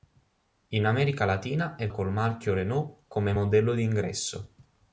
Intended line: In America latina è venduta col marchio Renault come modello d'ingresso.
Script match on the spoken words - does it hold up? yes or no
no